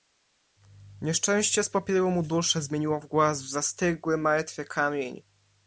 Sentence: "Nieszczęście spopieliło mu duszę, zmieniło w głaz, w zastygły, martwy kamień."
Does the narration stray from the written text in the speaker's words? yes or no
no